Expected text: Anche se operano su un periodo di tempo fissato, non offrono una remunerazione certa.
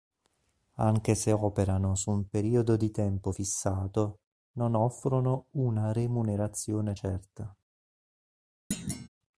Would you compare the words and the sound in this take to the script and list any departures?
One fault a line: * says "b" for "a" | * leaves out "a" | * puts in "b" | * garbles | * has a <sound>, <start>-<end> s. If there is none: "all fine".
* has a thud, 8.7-9.1 s